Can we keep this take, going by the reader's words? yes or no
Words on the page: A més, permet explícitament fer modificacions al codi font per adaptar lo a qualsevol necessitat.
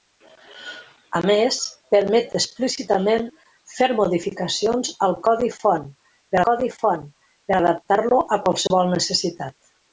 no